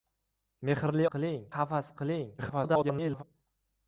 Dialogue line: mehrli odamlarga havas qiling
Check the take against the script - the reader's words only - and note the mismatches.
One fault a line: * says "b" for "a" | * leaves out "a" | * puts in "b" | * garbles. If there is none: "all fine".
* says "qiling" for "odamlarga"
* garbles